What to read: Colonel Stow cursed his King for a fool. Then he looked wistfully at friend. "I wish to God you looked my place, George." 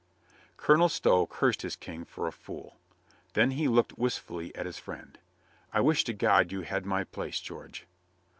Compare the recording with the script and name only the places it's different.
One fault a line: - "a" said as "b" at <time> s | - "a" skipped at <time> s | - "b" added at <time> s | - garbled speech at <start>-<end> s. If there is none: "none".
- "his" added at 4.7 s
- "looked" said as "had" at 6.6 s